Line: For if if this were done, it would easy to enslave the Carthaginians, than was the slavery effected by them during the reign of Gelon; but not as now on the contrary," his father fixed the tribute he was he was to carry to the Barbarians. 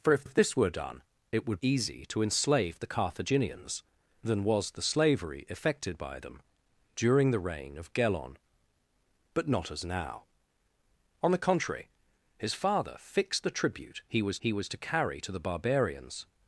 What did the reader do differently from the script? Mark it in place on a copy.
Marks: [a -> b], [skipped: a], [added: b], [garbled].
For if if this were done, it would easy to enslave the Carthaginians, than was the slavery effected by them during the reign of Gelon; but not as now on the contrary," his father fixed the tribute he was he was to carry to the Barbarians.